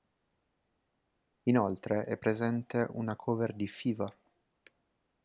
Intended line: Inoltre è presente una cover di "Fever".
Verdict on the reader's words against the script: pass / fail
pass